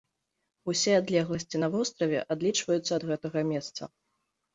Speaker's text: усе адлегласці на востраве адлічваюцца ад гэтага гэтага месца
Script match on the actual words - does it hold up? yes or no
no